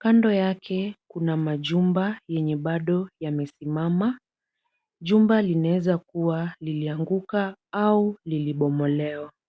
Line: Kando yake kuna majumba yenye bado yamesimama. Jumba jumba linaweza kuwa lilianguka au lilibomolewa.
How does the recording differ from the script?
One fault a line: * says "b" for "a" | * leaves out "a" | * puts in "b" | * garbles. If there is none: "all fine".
* leaves out "jumba"